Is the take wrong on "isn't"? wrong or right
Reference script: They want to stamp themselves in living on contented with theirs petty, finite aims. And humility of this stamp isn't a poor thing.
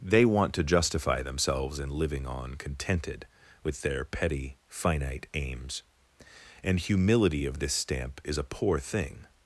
wrong